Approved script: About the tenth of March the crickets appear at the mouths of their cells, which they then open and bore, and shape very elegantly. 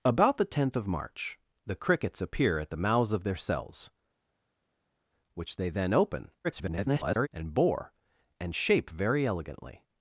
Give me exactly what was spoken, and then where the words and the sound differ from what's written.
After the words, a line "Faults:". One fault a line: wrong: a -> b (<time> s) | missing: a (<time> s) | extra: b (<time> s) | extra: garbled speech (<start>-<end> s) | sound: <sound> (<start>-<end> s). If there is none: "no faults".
About the tenth of March the crickets appear at the mouths of their cells, which they then open [garbled] and bore, and shape very elegantly.
Faults:
extra: garbled speech (6.4-7.3 s)